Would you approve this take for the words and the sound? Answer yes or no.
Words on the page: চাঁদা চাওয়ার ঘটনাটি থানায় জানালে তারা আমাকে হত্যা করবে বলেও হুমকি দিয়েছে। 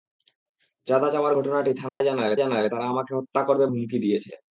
no